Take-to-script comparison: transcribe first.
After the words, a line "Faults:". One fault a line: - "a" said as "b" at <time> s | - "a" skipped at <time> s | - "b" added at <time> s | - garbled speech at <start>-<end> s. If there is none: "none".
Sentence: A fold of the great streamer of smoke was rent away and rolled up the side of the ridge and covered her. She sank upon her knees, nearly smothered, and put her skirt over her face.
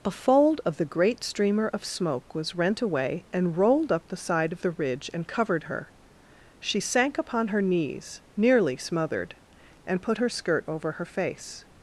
A fold of the great streamer of smoke was rent away and rolled up the side of the ridge and covered her. She sank upon her knees, nearly smothered, and put her skirt over her face.
Faults:
none